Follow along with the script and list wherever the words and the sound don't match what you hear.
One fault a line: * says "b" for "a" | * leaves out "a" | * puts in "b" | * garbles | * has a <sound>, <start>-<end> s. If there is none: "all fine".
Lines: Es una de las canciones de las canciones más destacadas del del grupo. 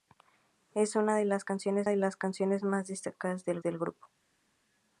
all fine